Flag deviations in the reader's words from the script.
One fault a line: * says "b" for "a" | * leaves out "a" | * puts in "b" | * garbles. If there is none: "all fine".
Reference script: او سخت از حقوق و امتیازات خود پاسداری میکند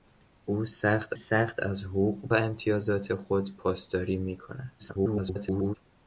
* puts in "سخت"
* garbles